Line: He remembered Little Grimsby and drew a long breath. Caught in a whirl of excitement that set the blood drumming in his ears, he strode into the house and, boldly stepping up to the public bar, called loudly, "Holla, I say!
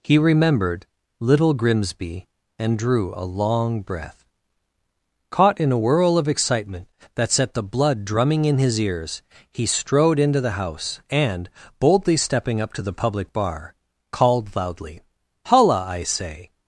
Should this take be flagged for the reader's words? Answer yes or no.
no